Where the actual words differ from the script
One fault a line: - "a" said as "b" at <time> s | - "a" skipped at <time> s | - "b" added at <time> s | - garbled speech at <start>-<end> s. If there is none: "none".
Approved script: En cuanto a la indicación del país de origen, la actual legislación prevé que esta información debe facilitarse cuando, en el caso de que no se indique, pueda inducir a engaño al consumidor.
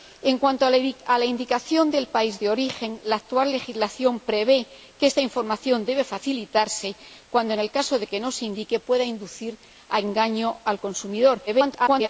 - garbled speech at 11.5-12.1 s